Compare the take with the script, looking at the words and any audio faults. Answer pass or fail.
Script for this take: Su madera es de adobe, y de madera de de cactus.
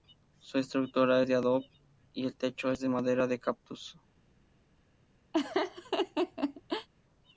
fail